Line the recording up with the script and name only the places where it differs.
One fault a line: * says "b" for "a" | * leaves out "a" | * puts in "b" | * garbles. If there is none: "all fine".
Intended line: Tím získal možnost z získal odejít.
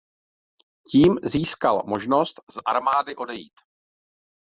* says "armády" for "získal"